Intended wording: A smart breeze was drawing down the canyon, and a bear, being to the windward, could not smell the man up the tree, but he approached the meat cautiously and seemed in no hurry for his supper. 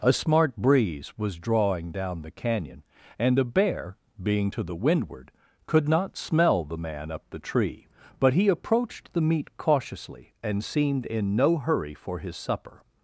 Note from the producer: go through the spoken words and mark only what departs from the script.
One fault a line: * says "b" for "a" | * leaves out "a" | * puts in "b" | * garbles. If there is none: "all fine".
all fine